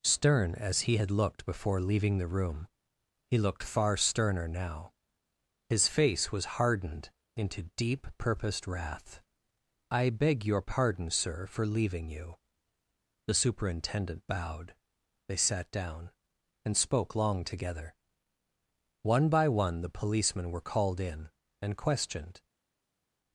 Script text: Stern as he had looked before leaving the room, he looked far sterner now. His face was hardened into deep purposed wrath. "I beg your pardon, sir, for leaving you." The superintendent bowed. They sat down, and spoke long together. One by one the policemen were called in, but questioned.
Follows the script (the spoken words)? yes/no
no